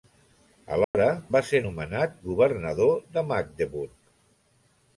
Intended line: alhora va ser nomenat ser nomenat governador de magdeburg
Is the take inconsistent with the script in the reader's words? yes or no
yes